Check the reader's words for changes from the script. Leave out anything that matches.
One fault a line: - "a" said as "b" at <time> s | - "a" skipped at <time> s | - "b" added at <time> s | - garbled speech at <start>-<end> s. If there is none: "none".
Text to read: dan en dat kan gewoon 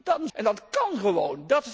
none